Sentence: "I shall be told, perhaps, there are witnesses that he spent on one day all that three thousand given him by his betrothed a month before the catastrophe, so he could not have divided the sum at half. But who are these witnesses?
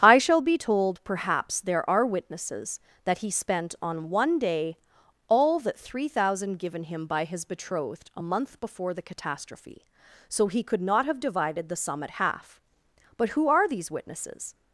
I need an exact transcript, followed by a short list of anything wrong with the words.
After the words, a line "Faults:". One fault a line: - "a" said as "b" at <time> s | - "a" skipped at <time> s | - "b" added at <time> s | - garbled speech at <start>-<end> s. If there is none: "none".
"I shall be told, perhaps, there are witnesses that he spent on one day all that three thousand given him by his betrothed a month before the catastrophe, so he could not have divided the sum at half. But who are these witnesses?
Faults:
none